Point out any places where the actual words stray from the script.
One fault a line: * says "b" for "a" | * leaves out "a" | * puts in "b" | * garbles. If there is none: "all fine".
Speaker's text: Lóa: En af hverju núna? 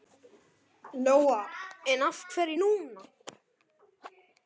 all fine